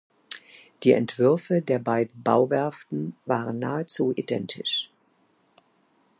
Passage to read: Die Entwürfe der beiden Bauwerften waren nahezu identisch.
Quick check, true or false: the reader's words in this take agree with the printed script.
true